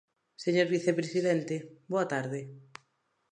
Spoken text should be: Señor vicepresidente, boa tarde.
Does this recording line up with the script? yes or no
yes